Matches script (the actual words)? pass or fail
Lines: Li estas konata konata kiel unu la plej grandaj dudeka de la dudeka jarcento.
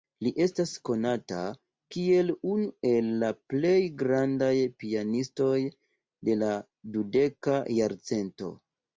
fail